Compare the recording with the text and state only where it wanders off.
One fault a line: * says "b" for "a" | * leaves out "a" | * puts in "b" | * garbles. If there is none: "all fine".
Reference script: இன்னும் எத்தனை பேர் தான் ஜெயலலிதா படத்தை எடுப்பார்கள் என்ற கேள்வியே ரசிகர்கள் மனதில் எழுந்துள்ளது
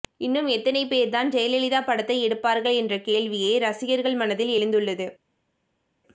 all fine